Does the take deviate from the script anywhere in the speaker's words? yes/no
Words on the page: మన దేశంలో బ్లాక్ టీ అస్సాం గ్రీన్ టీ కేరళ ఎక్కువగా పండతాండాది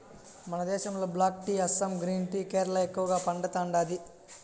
no